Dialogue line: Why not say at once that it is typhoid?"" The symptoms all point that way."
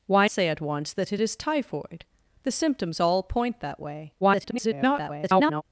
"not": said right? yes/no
no